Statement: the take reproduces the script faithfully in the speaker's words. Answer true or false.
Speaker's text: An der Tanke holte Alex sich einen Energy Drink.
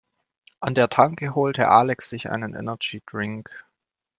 true